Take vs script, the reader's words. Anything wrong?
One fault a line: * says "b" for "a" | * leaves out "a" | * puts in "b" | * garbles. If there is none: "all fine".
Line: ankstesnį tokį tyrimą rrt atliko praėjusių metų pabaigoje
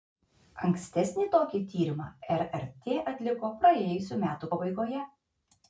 all fine